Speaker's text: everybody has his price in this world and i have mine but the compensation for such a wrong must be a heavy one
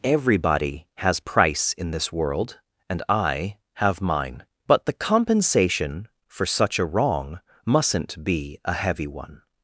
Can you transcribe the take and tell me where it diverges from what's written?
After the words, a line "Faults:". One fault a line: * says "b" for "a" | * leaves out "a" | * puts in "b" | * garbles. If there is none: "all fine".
everybody has price in this world and i have mine but the compensation for such a wrong mustn't be a heavy one
Faults:
* leaves out "his"
* says "mustn't" for "must"